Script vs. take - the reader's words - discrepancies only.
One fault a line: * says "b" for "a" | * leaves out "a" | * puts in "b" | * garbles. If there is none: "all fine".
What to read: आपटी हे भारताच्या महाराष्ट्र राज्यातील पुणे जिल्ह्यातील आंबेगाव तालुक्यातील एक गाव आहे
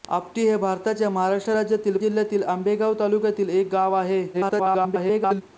* leaves out "पुणे"
* garbles